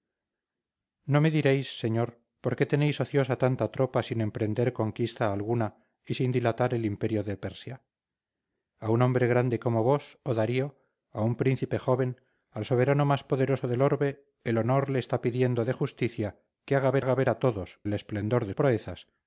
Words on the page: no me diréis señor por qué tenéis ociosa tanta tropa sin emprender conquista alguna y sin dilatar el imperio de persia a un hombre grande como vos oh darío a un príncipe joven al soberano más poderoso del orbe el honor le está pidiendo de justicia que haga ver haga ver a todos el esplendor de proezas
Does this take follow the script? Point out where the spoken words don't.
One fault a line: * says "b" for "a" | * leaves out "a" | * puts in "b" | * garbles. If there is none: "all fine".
all fine